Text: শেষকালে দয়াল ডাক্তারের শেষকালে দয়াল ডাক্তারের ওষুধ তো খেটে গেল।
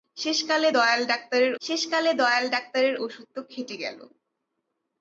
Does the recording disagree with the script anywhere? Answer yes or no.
no